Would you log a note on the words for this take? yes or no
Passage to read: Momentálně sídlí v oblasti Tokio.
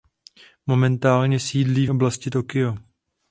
no